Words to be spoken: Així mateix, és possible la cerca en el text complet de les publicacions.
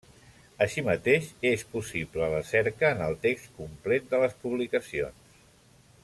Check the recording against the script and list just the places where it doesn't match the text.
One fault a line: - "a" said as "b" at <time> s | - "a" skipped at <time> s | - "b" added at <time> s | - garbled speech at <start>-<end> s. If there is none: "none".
none